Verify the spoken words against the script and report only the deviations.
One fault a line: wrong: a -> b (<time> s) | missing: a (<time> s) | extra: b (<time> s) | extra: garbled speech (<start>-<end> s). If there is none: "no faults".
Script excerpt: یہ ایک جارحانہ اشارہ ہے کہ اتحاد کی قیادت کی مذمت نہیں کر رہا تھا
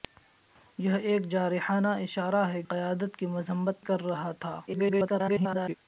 missing: کہ اتحاد کی (2.6 s)
missing: نہیں (3.9 s)
extra: garbled speech (4.7-5.8 s)